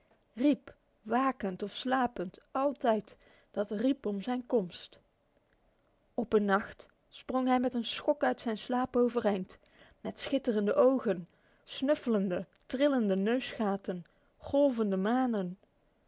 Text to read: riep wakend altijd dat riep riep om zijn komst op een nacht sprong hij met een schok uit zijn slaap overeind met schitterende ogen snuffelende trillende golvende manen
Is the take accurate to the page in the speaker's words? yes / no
no